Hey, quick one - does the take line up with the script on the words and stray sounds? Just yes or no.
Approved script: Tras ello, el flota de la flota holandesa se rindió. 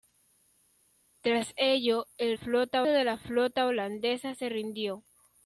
yes